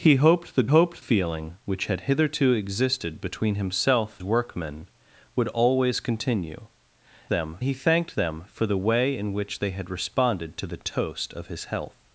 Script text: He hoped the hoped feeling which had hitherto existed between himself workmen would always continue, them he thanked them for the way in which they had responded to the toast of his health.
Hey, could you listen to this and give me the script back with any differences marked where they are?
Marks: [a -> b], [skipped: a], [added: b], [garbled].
He hoped the hoped feeling which had hitherto existed between himself workmen would always continue, them he thanked them for the way in which they had responded to the toast of his health.